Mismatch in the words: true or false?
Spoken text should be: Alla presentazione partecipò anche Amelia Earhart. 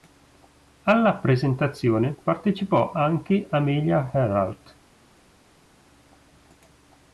false